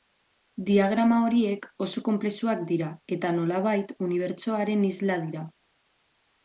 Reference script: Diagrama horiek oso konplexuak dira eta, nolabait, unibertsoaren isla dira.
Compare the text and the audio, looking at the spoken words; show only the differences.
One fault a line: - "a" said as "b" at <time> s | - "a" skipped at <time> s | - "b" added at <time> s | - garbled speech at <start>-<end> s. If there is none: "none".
none